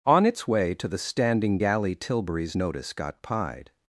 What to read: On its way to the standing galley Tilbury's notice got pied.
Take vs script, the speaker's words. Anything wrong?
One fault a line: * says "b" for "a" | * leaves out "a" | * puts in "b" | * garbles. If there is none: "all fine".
all fine